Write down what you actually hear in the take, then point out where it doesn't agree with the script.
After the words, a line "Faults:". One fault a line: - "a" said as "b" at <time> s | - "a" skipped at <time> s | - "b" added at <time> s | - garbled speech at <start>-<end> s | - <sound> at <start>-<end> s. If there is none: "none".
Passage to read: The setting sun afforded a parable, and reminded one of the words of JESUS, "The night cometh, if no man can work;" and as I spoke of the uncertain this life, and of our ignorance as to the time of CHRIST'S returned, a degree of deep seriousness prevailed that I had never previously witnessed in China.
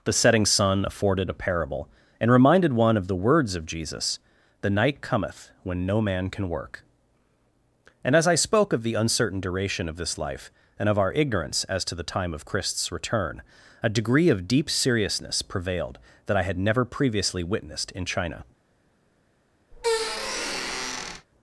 The setting sun afforded a parable, and reminded one of the words of JESUS, "The night cometh, when no man can work;" and as I spoke of the uncertain duration of this life, and of our ignorance as to the time of CHRIST'S return, a degree of deep seriousness prevailed that I had never previously witnessed in China.
Faults:
- "if" said as "when" at 5.6 s
- "duration of" added at 9.4 s
- "returned" said as "return" at 12.9 s
- squeak at 19.7-21.3 s